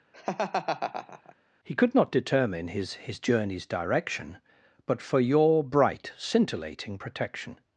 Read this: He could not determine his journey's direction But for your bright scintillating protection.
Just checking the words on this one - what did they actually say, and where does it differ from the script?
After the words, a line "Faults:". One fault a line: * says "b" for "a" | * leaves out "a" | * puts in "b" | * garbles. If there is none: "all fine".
He could not determine his his journey's direction But for your bright scintillating protection.
Faults:
* puts in "his"